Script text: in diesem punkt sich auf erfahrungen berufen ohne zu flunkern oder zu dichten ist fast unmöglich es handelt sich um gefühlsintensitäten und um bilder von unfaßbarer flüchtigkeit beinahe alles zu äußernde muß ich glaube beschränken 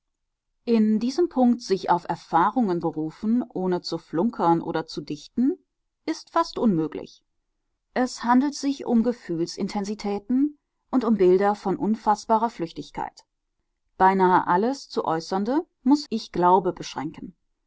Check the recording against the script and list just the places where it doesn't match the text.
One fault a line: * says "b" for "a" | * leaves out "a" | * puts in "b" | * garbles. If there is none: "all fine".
all fine